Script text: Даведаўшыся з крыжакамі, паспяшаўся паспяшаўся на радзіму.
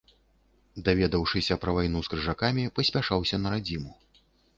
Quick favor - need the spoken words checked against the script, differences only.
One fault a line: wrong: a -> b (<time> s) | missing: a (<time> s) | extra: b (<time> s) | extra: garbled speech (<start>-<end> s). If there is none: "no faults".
extra: пра вайну (1.6 s)
missing: паспяшаўся (3.4 s)